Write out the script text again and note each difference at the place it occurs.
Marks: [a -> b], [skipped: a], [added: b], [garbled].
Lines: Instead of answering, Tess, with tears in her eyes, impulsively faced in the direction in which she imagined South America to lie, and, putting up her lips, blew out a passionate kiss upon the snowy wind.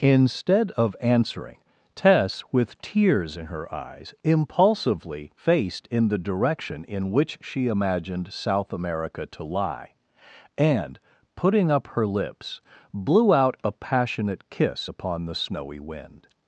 Instead of answering, Tess, with tears in her eyes, impulsively faced in the direction in which she imagined South America to lie, and, putting up her lips, blew out a passionate kiss upon the snowy wind.